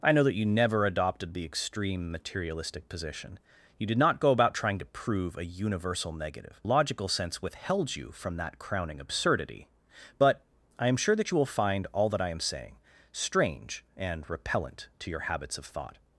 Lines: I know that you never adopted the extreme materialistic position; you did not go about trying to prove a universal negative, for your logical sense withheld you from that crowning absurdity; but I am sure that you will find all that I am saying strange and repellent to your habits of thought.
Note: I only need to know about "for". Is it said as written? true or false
false